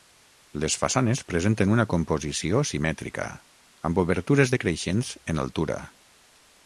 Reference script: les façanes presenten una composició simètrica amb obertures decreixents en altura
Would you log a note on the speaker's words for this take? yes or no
no